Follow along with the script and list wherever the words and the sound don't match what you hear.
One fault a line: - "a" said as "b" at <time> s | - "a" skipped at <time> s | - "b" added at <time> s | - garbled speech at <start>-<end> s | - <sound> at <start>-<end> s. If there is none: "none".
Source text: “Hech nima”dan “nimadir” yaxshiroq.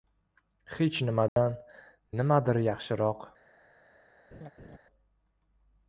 - dropout at 1.3-1.4 s
- laugh at 4.3-4.8 s